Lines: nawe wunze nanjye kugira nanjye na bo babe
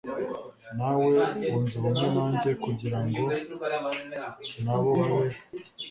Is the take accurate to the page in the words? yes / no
no